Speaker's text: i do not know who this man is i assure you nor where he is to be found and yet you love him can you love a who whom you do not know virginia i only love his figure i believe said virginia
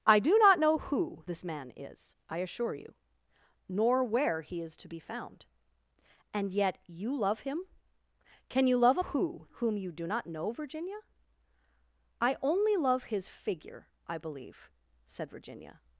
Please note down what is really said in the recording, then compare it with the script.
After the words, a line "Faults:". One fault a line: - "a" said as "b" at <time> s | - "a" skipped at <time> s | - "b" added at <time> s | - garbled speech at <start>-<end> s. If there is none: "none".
i do not know who this man is i assure you nor where he is to be found and yet you love him can you love a who whom you do not know virginia i only love his figure i believe said virginia
Faults:
none